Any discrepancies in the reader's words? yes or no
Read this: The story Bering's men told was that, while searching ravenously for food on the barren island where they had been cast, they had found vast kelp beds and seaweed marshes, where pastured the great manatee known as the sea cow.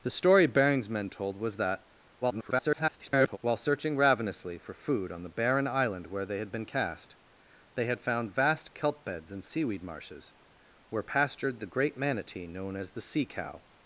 yes